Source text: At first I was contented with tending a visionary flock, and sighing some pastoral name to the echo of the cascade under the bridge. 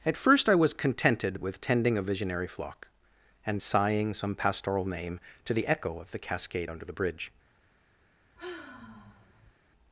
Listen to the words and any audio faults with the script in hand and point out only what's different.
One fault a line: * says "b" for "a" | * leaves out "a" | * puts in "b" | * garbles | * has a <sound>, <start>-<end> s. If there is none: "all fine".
* has a sigh, 8.4-9.5 s